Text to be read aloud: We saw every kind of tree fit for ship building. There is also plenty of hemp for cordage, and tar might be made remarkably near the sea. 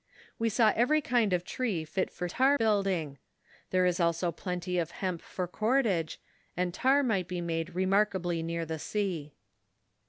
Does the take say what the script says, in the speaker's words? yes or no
no